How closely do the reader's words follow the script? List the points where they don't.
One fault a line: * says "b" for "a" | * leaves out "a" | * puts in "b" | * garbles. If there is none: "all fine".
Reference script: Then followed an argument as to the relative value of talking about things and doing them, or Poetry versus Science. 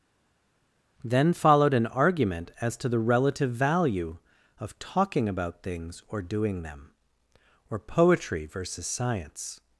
* says "or" for "and"